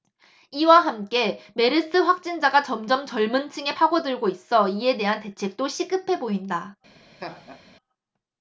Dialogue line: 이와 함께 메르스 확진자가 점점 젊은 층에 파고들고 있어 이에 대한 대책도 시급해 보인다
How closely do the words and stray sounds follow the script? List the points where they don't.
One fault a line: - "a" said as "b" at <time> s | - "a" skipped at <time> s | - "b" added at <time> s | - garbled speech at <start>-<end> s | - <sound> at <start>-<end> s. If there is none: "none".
- laugh at 7.2-7.6 s